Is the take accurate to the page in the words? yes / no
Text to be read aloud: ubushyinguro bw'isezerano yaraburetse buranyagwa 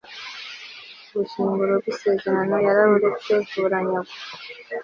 yes